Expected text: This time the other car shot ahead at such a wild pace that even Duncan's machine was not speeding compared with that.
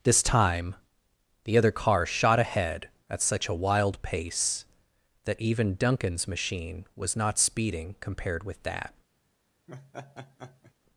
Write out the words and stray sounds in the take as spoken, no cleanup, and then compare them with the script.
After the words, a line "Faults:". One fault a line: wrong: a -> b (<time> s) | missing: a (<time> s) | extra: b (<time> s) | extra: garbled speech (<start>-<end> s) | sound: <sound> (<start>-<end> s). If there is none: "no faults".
This time the other car shot ahead at such a wild pace that even Duncan's machine was not speeding compared with that.
Faults:
sound: laugh (9.7-10.7 s)